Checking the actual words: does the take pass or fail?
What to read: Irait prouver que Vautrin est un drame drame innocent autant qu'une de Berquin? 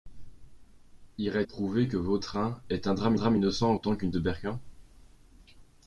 pass